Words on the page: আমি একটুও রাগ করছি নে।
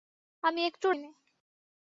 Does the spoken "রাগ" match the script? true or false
false